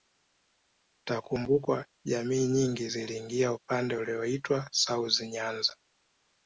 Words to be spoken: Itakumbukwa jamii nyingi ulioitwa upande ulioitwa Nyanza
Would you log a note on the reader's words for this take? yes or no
yes